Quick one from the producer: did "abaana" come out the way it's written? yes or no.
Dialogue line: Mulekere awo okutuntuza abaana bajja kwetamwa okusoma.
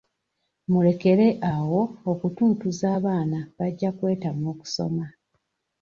yes